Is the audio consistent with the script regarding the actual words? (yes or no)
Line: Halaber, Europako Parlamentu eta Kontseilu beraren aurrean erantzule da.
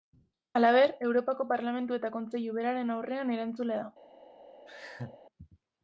yes